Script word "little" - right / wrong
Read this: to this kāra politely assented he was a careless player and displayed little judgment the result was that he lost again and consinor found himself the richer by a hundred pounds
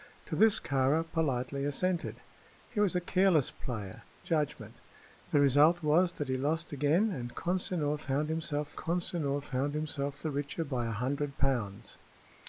wrong